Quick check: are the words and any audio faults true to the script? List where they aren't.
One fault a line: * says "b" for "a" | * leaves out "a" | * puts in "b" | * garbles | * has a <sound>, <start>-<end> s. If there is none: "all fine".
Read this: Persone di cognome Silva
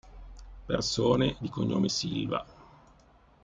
all fine